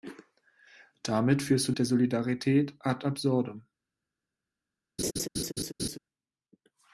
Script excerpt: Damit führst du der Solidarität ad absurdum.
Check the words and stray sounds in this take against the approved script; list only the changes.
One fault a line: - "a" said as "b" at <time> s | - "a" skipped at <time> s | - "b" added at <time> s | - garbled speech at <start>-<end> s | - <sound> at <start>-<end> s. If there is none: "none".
- laugh at 5.0-6.0 s